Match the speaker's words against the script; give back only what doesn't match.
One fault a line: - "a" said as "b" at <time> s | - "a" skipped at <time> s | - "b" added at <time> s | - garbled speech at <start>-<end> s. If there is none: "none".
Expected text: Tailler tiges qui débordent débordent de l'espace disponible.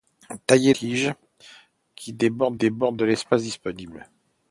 none